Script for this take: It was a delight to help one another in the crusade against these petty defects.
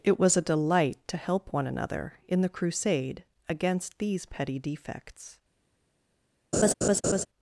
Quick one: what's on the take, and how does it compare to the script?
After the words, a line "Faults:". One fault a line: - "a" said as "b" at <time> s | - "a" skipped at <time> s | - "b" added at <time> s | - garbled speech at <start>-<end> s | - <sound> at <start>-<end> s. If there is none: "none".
It was a delight to help one another in the crusade against these petty defects.
Faults:
- laugh at 6.5-7.3 s